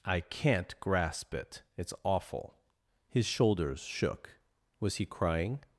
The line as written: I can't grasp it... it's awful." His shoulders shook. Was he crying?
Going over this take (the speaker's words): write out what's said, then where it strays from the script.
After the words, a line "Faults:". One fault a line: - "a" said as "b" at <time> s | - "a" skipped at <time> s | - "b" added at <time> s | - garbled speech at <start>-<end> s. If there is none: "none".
I can't grasp it... it's awful." His shoulders shook. Was he crying?
Faults:
none